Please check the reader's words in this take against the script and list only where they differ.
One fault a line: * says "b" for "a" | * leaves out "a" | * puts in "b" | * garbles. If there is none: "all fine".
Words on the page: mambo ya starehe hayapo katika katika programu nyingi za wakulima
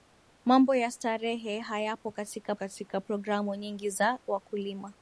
all fine